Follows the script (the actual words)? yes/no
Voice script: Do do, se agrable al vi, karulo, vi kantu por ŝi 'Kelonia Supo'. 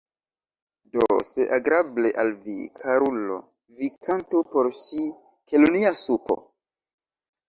no